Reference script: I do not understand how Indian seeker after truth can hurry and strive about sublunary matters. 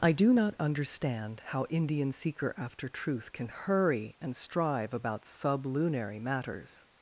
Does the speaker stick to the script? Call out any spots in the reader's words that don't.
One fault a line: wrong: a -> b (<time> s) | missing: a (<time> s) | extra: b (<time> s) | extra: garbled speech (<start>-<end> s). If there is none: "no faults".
no faults